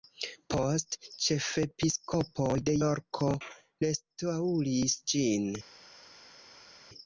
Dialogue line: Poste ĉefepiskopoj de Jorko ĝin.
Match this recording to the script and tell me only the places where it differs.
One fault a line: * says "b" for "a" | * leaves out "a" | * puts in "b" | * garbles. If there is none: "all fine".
* puts in "restaŭris"